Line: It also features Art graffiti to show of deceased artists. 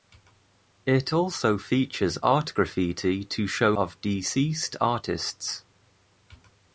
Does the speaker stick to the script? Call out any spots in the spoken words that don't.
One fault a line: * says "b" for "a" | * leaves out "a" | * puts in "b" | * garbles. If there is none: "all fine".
all fine